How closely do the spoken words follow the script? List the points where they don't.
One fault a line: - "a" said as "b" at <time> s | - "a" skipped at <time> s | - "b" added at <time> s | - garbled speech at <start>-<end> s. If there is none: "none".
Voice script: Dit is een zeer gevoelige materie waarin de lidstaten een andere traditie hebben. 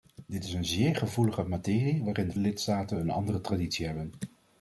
none